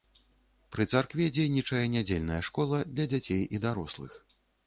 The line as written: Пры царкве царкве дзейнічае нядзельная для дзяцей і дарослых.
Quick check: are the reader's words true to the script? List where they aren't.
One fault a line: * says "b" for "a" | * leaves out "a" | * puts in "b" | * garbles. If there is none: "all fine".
* leaves out "царкве"
* puts in "школа"